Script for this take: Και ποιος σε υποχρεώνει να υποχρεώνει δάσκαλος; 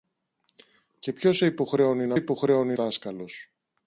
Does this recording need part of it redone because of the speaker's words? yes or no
no